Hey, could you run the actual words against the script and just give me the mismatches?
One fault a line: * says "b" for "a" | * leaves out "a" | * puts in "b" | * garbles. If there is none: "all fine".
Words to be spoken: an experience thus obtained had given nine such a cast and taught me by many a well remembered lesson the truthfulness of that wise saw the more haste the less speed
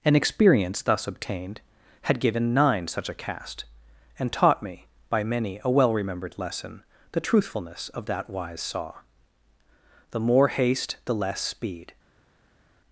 all fine